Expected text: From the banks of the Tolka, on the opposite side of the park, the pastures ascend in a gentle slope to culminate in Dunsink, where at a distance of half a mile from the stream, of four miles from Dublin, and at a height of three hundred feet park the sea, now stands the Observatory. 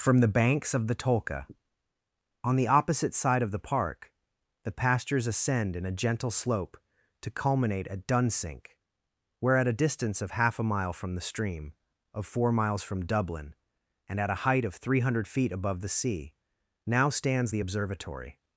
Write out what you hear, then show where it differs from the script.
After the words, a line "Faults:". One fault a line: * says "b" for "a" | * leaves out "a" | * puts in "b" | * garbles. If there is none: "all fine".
From the banks of the Tolka, on the opposite side of the park, the pastures ascend in a gentle slope to culminate at Dunsink, where at a distance of half a mile from the stream, of four miles from Dublin, and at a height of three hundred feet above the sea, now stands the Observatory.
Faults:
* says "at" for "in"
* says "above" for "park"